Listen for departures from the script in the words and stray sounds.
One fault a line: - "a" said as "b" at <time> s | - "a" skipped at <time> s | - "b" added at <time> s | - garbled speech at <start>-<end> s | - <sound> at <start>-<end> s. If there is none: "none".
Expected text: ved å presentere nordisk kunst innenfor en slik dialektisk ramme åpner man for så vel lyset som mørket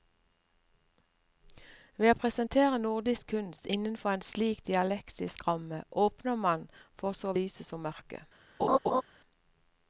- "vel" skipped at 7.4 s
- laugh at 8.6-9.0 s